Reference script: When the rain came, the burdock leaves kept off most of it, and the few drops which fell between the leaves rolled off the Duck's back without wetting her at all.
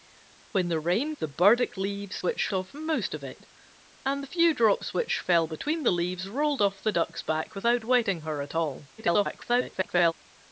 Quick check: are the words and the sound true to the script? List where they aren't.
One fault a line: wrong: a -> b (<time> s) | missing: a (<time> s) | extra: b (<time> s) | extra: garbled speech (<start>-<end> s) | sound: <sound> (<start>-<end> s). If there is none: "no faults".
missing: came (1.1 s)
wrong: kept -> which (2.2 s)
extra: garbled speech (9.0-10.1 s)